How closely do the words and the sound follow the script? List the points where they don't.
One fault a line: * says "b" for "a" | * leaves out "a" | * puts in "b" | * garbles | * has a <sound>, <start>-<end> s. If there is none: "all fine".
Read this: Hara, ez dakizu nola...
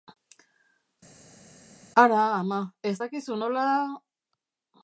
* puts in "ama"